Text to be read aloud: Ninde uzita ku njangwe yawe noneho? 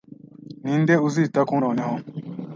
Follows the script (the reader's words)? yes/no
no